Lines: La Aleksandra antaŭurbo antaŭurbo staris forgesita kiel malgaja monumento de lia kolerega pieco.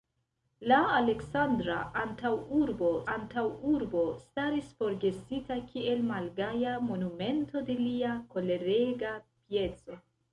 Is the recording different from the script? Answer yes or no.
no